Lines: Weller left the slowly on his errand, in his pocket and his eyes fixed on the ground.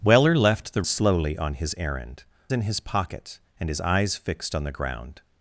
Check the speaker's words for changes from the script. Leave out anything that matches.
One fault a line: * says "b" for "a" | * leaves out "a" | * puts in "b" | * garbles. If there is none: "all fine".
all fine